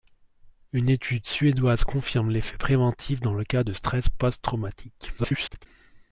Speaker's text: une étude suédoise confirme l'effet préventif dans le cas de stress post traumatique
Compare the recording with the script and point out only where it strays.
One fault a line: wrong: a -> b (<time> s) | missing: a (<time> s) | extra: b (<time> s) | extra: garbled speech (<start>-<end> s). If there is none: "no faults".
extra: garbled speech (5.2-5.7 s)